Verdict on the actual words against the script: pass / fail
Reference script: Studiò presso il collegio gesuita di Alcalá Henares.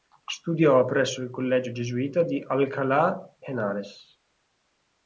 pass